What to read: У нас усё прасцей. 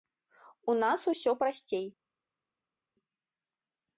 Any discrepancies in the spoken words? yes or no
no